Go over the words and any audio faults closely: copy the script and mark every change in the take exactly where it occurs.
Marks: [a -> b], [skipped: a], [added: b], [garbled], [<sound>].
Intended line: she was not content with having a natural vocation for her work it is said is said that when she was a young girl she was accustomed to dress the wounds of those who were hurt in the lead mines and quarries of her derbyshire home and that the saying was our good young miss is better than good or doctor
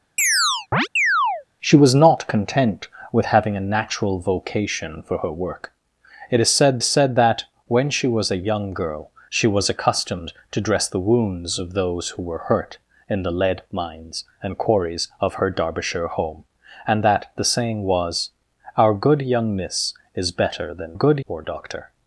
[chirp] she was not content with having a natural vocation for her work it is said is said that when she was a young girl she was accustomed to dress the wounds of those who were hurt in the lead mines and quarries of her derbyshire home and that the saying was our good young miss is better than good or doctor